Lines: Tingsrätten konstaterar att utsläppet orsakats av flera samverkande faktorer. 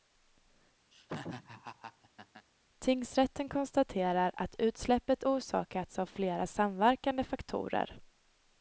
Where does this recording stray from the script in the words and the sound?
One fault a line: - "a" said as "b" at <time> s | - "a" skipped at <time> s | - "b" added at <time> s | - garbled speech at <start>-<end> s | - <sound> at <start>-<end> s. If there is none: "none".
- laugh at 0.9-2.5 s